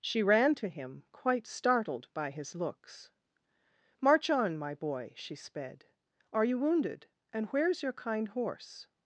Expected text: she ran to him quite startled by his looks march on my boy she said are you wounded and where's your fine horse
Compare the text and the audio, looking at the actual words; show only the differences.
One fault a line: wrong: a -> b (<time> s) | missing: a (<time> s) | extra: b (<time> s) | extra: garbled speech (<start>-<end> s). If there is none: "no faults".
wrong: said -> sped (5.3 s)
wrong: fine -> kind (7.9 s)